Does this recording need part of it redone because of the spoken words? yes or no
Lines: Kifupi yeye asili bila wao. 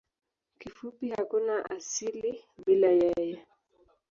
yes